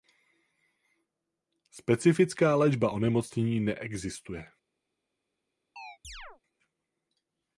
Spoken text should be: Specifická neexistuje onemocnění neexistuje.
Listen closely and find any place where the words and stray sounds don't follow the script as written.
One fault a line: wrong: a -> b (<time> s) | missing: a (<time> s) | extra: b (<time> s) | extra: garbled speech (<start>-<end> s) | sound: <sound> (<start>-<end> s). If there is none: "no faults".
wrong: neexistuje -> léčba (2.5 s)
sound: chirp (5.8-6.4 s)